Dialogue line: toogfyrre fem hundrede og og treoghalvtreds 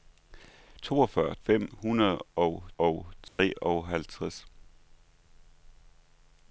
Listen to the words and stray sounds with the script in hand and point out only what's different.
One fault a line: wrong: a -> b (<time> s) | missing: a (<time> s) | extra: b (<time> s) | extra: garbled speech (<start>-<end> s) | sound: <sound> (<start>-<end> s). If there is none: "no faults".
sound: dropout (3.3-3.4 s)